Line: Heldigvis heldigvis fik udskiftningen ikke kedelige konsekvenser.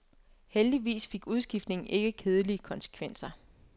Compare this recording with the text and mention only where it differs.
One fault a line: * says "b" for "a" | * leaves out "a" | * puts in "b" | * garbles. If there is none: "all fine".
* leaves out "heldigvis"